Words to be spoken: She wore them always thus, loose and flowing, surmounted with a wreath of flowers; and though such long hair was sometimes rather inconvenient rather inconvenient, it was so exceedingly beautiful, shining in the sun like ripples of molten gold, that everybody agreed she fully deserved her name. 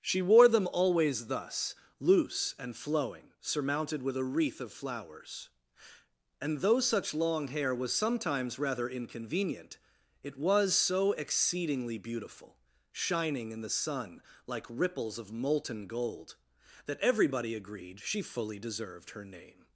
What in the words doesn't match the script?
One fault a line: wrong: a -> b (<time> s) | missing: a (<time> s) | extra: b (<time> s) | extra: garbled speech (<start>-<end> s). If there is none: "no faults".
missing: rather inconvenient (9.8 s)